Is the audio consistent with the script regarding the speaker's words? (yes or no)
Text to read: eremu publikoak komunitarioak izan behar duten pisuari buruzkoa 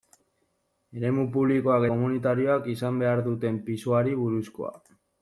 yes